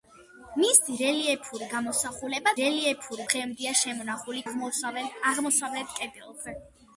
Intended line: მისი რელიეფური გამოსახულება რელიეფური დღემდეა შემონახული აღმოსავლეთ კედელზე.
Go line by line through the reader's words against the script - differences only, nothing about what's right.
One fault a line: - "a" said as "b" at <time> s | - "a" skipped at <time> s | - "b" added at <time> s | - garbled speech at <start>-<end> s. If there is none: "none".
none